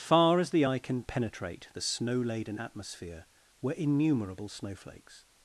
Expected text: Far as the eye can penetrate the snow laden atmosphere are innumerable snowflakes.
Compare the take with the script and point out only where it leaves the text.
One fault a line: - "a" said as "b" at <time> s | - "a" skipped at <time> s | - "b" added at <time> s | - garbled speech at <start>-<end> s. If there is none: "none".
- "are" said as "were" at 3.6 s